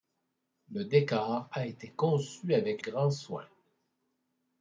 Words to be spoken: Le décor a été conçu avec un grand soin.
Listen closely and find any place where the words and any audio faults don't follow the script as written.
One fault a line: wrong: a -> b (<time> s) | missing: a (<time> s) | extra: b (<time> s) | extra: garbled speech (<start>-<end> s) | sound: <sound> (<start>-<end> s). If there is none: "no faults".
missing: un (2.8 s)